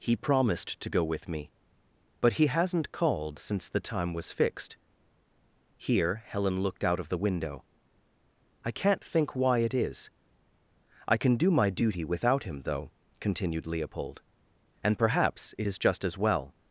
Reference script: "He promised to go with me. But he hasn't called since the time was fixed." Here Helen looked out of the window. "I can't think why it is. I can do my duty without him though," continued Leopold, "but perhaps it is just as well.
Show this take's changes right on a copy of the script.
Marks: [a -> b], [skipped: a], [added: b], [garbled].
"He promised to go with me. But he hasn't called since the time was fixed." Here Helen looked out of the window. "I can't think why it is. I can do my duty without him though," continued Leopold, ["but -> and] perhaps it is just as well.